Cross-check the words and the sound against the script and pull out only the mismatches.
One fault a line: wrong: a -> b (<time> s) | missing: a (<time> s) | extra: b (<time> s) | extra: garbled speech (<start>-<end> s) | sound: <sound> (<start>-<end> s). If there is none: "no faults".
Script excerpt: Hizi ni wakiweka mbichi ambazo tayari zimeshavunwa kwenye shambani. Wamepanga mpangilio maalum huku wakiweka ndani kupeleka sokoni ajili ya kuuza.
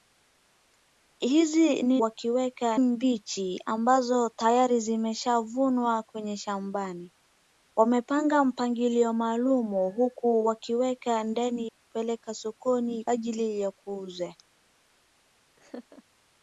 sound: laugh (15.6-16.0 s)